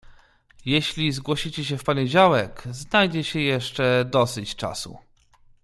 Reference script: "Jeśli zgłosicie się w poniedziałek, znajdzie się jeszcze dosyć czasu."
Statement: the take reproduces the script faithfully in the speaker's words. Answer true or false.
true